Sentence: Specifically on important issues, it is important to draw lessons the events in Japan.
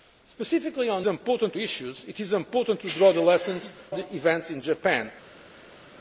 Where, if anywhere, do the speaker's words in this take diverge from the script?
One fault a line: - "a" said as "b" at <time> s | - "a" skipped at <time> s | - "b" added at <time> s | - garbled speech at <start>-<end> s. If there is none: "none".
none